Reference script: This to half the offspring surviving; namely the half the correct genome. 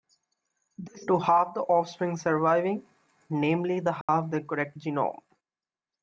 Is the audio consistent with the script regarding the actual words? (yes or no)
yes